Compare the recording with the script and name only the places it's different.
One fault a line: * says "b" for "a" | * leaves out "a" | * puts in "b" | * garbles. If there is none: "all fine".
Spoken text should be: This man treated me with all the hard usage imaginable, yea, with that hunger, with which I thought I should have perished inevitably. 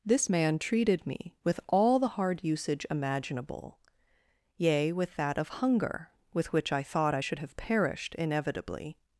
* puts in "of"